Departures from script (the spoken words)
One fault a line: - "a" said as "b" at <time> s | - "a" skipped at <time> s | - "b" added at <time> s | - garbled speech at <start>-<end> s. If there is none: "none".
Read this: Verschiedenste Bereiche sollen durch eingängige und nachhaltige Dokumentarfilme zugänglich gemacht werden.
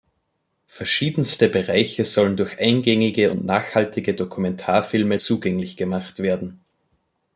none